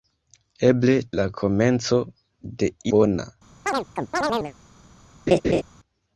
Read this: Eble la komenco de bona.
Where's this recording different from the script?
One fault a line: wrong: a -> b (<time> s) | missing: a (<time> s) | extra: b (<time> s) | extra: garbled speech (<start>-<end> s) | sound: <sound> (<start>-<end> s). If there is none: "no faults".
sound: chirp (3.7-4.5 s)
sound: laugh (5.3-5.6 s)